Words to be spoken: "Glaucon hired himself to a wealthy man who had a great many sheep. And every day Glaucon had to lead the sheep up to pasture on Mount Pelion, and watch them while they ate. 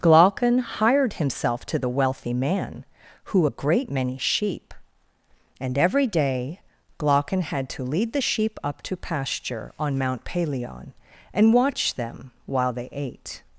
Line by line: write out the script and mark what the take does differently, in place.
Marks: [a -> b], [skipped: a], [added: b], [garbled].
"Glaucon hired himself to [a -> the] wealthy man who [skipped: had] a great many sheep. And every day Glaucon had to lead the sheep up to pasture on Mount Pelion, and watch them while they ate.